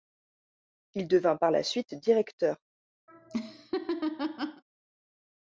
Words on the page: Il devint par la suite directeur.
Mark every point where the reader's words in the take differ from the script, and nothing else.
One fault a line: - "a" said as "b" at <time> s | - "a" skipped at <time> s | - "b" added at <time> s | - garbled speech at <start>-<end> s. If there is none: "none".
none